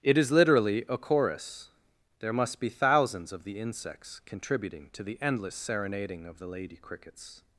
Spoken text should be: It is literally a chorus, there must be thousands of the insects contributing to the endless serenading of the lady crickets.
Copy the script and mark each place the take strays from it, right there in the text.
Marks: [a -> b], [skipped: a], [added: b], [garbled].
It is literally a chorus, there must be thousands of the insects contributing to the endless serenading of the lady crickets.